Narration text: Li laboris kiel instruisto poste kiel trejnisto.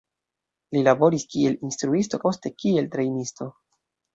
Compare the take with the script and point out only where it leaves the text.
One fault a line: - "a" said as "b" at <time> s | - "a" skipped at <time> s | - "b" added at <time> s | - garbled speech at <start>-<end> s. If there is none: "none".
none